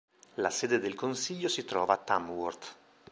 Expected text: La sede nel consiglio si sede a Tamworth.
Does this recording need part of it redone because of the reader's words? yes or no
yes